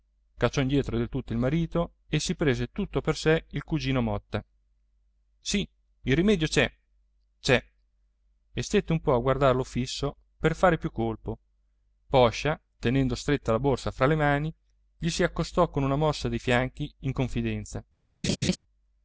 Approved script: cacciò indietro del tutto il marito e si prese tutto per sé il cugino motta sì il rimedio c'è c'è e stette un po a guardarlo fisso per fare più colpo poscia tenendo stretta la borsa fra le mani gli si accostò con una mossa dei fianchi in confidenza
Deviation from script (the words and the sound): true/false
true